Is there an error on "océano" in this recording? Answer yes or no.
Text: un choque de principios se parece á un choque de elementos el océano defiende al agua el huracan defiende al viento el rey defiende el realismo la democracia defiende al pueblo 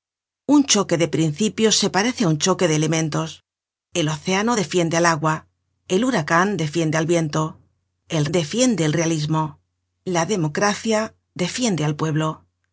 no